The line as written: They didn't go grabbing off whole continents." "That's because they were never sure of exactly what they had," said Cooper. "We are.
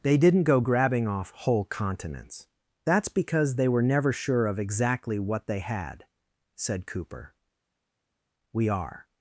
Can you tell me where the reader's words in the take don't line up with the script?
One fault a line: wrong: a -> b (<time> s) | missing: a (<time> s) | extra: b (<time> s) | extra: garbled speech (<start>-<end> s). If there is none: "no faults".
no faults